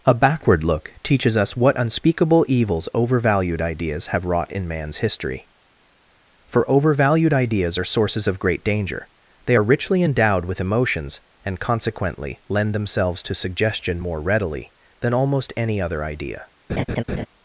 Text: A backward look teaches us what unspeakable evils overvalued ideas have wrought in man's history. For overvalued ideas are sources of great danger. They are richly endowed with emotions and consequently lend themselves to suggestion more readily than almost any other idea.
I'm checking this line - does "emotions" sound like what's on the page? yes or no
yes